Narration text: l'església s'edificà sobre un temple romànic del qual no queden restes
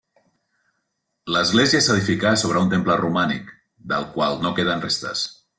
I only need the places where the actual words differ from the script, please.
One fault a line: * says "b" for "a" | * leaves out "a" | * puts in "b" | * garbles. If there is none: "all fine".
all fine